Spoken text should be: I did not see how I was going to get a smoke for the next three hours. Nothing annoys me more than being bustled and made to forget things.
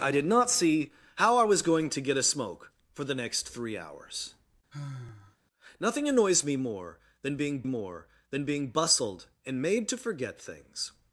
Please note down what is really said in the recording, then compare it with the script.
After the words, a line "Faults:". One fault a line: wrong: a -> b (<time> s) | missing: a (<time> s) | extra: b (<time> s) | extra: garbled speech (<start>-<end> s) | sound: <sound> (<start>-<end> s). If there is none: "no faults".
I did not see how I was going to get a smoke for the next three hours. Nothing annoys me more than being more than being bustled and made to forget things.
Faults:
sound: sigh (4.7-5.4 s)
extra: more than being (7.6 s)